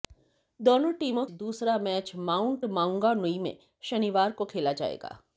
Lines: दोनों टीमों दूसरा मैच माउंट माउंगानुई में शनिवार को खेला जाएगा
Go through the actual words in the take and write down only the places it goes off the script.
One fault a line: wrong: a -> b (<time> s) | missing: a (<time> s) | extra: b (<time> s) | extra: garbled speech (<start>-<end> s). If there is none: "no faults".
no faults